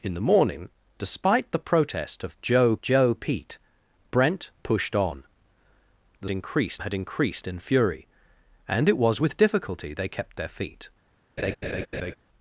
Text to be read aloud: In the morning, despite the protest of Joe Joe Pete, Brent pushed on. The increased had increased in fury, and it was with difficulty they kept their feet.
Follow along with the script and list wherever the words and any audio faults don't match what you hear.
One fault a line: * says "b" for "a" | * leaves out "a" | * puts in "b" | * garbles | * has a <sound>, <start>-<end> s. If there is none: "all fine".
* has a laugh, 11.4-12.2 s